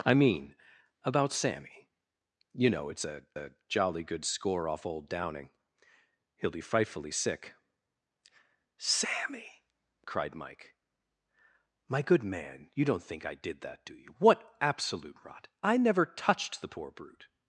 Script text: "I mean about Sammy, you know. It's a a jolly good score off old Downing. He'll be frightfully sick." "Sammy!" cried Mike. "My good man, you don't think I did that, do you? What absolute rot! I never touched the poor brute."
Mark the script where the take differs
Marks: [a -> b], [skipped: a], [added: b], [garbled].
"I mean about Sammy, you know. It's a a jolly good score off old Downing. He'll be frightfully sick." "Sammy!" cried Mike. "My good man, you don't think I did that, do you? What absolute rot! I never touched the poor brute."